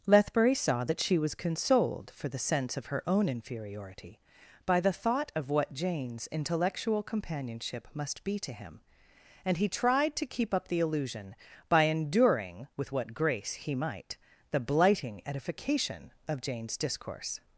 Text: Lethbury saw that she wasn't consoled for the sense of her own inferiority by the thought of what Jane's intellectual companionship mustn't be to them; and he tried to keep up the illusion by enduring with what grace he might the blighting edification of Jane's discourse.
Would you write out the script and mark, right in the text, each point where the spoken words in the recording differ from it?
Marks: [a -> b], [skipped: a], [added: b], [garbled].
Lethbury saw that she [wasn't -> was] consoled for the sense of her own inferiority by the thought of what Jane's intellectual companionship [mustn't -> must] be to [them; -> him] and he tried to keep up the illusion by enduring with what grace he might the blighting edification of Jane's discourse.